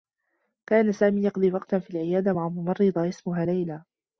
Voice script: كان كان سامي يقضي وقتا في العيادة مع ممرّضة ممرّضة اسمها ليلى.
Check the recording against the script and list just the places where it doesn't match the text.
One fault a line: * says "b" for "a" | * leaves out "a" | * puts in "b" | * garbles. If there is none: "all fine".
* leaves out "كان"
* leaves out "ممرّضة"